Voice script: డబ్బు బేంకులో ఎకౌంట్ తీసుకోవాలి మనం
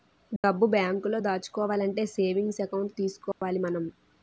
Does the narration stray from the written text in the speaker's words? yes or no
yes